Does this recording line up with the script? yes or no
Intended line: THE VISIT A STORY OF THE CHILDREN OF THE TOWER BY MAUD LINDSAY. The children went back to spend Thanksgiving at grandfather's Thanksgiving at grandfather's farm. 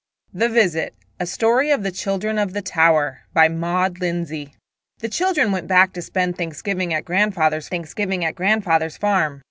yes